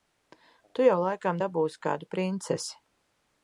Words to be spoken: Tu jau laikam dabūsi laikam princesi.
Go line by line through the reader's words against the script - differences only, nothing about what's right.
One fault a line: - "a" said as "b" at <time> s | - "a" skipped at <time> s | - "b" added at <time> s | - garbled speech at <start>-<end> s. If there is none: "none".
- "laikam" said as "kādu" at 1.9 s